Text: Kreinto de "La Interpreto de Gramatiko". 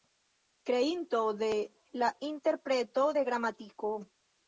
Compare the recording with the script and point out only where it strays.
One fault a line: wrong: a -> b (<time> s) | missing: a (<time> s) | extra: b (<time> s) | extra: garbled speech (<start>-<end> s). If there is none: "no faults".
no faults